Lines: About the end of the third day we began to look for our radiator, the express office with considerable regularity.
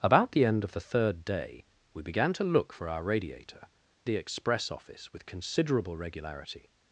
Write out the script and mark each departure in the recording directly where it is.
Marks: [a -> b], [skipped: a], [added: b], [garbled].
About the end of the third day we began to look for our radiator, the express office with considerable regularity.